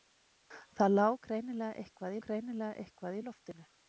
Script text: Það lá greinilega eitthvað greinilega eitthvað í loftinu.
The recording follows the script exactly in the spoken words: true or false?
true